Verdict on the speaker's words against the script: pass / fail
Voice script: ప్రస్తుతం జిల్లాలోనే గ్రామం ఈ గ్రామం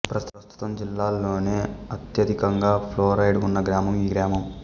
fail